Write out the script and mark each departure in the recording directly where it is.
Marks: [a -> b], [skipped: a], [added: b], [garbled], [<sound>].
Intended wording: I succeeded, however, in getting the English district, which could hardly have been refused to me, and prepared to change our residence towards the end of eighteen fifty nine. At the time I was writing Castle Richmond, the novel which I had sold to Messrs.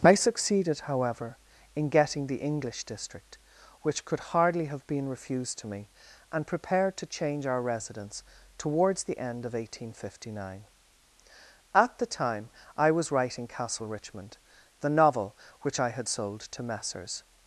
I succeeded, however, in getting the English district, which could hardly have been refused to me, and prepared to change our residence towards the end of eighteen fifty nine. At the time I was writing Castle Richmond, the novel which I had sold to Messrs.